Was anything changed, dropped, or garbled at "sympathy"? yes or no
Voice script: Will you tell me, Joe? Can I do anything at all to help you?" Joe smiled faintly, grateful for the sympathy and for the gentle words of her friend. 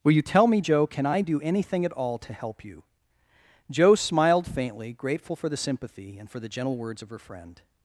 no